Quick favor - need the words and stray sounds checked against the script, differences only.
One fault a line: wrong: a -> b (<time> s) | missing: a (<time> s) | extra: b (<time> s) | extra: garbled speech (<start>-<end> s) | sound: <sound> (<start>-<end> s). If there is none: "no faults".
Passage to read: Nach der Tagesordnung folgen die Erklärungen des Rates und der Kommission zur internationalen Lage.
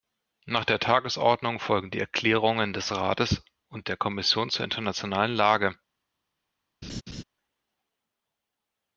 sound: laugh (6.8-7.2 s)